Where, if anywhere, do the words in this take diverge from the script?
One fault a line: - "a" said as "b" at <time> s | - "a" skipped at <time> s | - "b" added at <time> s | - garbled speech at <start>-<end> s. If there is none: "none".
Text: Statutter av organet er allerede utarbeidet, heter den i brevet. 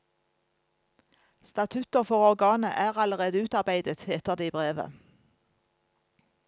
- "av" said as "for" at 2.0 s
- "den" said as "det" at 4.3 s